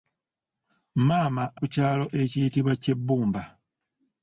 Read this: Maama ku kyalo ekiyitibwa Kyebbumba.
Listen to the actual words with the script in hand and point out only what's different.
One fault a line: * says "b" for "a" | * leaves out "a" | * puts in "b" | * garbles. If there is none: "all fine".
all fine